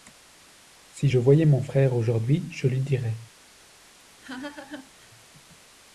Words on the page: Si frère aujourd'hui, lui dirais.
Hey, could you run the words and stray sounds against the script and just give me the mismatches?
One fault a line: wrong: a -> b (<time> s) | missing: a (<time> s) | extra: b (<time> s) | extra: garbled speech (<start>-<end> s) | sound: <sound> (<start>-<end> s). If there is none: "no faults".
extra: je voyais mon (1.1 s)
extra: je (2.5 s)
sound: laugh (4.2-5.1 s)